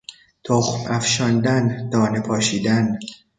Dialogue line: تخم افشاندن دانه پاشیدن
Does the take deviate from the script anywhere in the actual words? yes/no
no